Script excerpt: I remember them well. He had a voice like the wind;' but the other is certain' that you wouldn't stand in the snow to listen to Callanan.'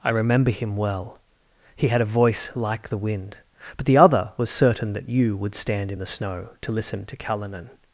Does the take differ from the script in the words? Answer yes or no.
yes